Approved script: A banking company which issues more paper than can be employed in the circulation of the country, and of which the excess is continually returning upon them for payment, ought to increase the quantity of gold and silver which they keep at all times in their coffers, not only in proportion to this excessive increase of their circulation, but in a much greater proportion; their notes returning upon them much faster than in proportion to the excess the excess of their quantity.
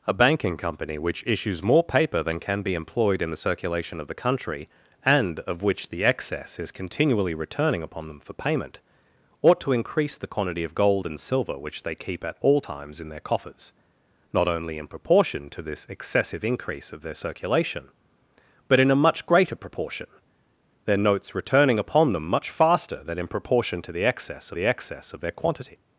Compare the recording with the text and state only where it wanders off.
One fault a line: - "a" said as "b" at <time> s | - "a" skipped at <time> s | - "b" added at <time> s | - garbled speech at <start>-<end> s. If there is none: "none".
none